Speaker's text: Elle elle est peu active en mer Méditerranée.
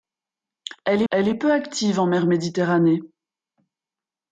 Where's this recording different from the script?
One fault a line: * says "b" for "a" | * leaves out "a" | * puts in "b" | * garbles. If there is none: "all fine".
all fine